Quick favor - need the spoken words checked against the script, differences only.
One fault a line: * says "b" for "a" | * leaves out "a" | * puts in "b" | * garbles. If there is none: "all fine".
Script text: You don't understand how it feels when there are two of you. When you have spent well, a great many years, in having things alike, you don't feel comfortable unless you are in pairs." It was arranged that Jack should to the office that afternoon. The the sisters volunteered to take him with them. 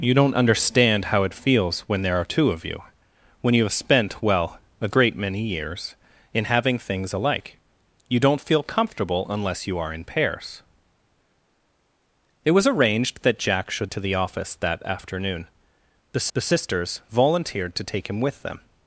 all fine